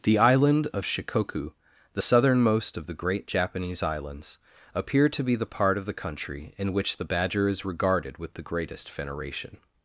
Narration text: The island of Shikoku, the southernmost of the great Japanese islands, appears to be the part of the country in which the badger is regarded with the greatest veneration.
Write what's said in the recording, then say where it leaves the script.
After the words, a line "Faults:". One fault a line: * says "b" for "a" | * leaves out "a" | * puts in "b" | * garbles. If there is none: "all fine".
The island of Shikoku, the southernmost of the great Japanese islands, appear to be the part of the country in which the badger is regarded with the greatest veneration.
Faults:
* says "appear" for "appears"